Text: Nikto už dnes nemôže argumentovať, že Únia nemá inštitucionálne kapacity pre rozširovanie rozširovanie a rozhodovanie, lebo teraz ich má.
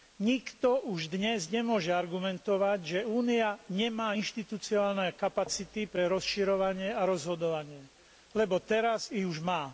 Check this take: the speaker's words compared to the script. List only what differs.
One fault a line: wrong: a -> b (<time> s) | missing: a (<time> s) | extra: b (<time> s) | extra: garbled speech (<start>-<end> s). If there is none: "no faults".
missing: rozširovanie (6.9 s)
extra: už (9.2 s)